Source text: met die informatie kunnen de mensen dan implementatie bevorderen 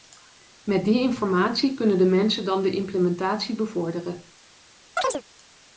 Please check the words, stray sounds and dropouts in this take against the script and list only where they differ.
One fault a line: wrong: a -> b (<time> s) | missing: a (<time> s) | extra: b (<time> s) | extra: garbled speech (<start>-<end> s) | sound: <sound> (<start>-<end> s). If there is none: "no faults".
extra: de (2.6 s)
sound: chirp (5.0-5.2 s)